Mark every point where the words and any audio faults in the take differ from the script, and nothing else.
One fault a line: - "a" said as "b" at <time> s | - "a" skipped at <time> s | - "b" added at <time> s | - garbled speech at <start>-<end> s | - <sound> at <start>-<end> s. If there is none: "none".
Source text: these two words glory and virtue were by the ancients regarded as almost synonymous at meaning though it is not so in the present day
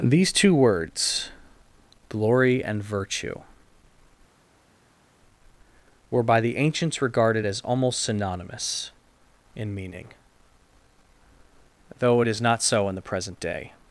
- "at" said as "in" at 9.6 s